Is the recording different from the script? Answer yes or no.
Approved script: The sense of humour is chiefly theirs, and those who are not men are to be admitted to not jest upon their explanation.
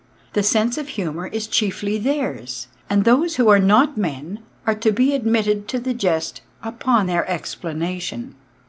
yes